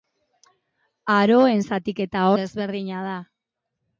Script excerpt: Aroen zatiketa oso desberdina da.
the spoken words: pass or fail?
fail